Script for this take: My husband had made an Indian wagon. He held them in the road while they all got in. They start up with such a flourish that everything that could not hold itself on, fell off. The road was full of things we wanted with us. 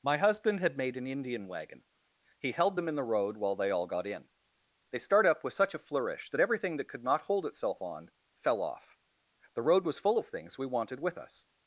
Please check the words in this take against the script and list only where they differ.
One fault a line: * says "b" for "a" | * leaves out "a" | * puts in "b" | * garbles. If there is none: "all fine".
all fine